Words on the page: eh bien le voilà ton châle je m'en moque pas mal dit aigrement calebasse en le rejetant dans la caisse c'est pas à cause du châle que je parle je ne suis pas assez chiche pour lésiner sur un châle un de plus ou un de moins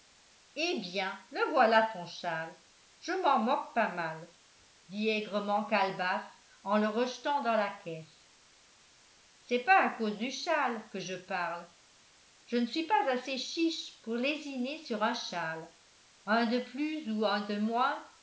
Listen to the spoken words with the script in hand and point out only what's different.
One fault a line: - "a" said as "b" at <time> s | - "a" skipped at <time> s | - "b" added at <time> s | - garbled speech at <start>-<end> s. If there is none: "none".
none